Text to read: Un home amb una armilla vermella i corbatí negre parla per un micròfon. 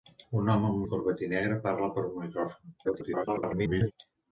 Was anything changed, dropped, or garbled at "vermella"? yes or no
yes